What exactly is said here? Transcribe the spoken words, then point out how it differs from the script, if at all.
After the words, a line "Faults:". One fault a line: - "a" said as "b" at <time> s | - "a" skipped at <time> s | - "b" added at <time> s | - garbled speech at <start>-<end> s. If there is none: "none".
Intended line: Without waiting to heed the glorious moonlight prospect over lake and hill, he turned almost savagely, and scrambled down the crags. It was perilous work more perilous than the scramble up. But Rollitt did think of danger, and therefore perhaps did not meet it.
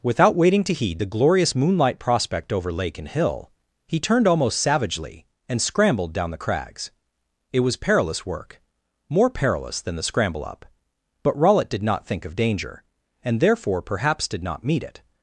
Without waiting to heed the glorious moonlight prospect over lake and hill, he turned almost savagely, and scrambled down the crags. It was perilous work more perilous than the scramble up. But Rollitt did not think of danger, and therefore perhaps did not meet it.
Faults:
- "not" added at 11.8 s